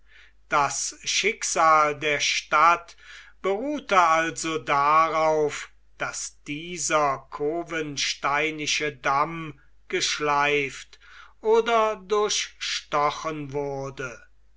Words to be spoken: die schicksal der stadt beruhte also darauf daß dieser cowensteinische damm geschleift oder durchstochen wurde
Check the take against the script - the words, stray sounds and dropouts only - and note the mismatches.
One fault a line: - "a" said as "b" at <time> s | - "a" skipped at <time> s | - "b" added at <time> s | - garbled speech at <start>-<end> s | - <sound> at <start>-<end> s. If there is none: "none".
- "die" said as "das" at 0.5 s